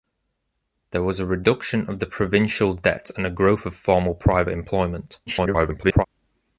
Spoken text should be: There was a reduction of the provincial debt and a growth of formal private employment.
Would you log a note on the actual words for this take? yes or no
yes